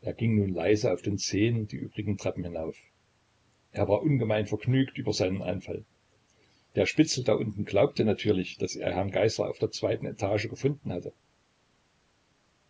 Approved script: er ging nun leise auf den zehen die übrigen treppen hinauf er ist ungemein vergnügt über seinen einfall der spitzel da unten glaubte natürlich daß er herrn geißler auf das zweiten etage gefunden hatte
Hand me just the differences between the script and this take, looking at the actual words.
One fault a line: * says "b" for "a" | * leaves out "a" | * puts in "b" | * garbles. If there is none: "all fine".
* says "war" for "ist"
* says "der" for "das"